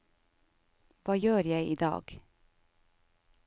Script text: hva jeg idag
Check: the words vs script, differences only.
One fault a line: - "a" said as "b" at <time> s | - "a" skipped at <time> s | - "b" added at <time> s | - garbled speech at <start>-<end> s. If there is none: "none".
- "gjør" added at 1.2 s